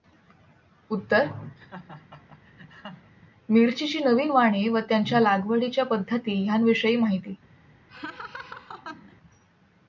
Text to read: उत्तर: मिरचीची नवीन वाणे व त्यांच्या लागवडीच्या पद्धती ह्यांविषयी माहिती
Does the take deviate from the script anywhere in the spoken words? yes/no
no